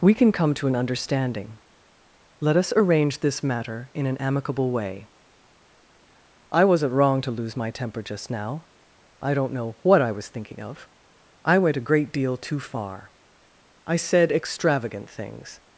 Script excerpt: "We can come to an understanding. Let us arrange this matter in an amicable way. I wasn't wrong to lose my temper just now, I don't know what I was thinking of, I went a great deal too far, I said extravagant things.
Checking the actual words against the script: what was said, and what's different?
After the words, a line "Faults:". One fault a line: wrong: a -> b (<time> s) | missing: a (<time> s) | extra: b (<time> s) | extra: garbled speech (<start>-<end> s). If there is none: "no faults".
"We can come to an understanding. Let us arrange this matter in an amicable way. I wasn't wrong to lose my temper just now, I don't know what I was thinking of, I went a great deal too far, I said extravagant things.
Faults:
no faults